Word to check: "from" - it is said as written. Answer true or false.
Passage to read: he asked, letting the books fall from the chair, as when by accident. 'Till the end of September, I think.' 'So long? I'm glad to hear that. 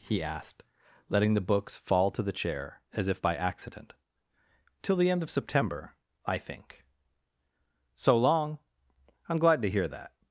false